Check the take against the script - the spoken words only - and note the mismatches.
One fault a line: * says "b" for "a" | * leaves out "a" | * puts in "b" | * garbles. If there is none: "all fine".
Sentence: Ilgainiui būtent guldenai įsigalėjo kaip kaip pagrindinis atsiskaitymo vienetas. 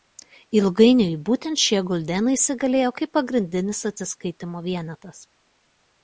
* puts in "šie"
* leaves out "kaip"